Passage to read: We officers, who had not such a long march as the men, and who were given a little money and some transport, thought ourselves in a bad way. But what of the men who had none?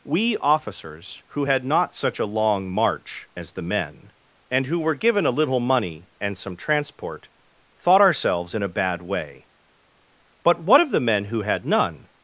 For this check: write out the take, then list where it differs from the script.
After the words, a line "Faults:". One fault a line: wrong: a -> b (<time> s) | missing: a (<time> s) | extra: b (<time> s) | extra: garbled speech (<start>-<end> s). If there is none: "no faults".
We officers, who had not such a long march as the men, and who were given a little money and some transport, thought ourselves in a bad way. But what of the men who had none?
Faults:
no faults